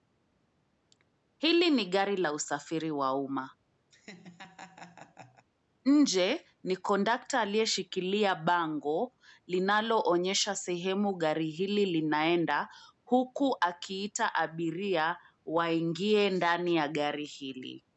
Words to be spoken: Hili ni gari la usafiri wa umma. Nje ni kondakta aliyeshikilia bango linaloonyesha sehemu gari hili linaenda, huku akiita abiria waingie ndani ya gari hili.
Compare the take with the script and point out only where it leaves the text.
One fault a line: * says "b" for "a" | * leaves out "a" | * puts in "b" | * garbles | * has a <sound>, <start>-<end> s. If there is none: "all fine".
* has a laugh, 3.9-5.5 s